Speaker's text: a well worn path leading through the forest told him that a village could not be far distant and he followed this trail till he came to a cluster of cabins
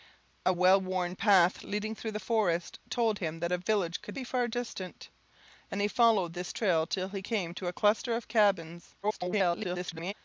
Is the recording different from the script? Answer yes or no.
yes